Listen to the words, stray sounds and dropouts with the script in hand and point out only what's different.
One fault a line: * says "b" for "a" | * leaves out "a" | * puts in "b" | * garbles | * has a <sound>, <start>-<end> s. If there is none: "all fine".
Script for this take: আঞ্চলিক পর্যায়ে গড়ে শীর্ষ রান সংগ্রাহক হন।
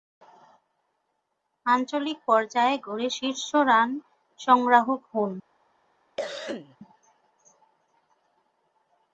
* has a cough, 6.2-6.8 s